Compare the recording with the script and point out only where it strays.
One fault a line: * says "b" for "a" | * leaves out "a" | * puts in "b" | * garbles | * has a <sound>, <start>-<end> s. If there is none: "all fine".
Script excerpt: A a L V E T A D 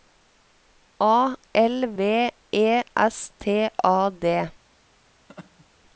* leaves out "a"
* puts in "S"
* has a laugh, 5.3-5.7 s